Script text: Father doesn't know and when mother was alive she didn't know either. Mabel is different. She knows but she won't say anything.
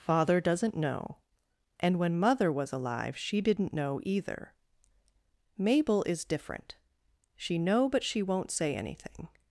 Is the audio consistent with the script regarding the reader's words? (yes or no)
no